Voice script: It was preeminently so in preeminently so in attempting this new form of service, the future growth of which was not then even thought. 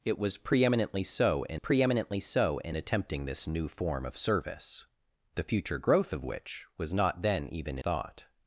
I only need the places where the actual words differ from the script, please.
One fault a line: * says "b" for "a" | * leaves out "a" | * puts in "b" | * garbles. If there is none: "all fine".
all fine